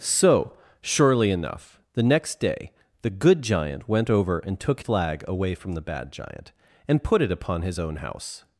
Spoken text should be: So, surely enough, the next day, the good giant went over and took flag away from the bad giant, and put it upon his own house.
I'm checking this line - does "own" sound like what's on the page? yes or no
yes